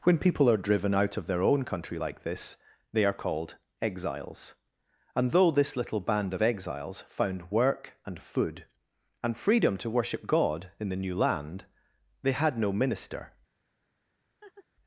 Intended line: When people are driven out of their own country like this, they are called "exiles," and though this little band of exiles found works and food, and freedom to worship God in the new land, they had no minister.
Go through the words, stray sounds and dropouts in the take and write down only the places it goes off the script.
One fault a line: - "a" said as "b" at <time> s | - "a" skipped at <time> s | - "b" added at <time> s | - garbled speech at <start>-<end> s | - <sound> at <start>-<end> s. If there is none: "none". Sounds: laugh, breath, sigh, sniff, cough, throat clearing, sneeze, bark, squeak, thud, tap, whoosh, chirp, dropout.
- "works" said as "work" at 7.5 s
- laugh at 14.4-14.7 s